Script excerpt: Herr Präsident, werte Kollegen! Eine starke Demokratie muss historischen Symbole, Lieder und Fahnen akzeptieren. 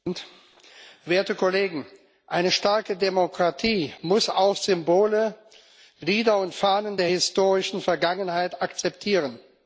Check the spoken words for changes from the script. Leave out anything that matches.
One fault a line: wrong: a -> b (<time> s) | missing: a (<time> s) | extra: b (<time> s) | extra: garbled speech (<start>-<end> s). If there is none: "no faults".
wrong: historischen -> auch (4.3 s)
extra: der historischen Vergangenheit (7.0 s)